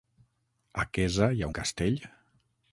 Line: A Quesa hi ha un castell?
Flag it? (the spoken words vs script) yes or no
no